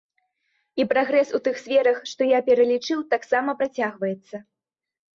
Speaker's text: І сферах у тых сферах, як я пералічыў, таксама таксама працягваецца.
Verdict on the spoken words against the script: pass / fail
fail